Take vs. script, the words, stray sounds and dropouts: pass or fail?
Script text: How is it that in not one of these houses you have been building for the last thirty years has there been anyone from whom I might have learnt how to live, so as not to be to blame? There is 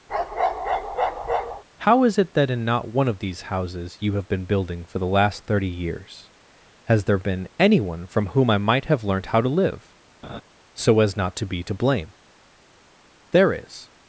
fail